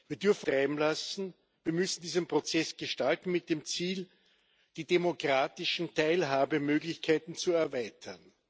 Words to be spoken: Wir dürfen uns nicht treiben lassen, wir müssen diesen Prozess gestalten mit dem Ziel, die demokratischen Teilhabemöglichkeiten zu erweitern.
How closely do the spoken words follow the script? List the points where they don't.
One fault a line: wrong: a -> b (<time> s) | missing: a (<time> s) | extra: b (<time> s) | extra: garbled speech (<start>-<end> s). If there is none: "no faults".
missing: uns nicht (0.5 s)